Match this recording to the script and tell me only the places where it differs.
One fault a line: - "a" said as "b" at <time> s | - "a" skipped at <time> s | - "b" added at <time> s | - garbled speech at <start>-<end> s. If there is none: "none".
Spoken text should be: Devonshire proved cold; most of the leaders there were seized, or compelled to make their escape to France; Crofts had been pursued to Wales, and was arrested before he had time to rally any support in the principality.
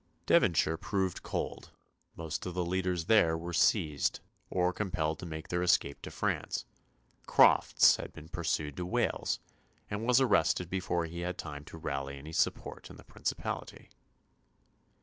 none